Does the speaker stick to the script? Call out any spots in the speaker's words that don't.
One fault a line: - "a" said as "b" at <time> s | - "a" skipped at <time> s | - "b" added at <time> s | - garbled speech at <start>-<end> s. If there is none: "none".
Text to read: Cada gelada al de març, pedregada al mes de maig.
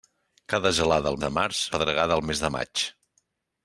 none